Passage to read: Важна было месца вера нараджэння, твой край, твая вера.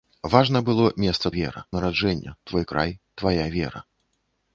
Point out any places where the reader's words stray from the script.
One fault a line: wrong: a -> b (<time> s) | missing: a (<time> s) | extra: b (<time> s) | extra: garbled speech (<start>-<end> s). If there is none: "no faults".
no faults